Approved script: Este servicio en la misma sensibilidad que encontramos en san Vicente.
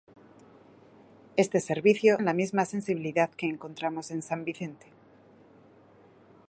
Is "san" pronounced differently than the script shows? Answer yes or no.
no